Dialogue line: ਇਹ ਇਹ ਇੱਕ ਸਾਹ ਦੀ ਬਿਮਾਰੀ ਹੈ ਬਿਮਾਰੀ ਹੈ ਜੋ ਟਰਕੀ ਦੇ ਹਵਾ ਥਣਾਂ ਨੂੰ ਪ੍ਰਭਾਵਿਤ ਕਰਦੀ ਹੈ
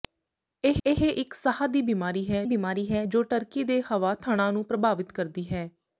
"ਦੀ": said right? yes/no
yes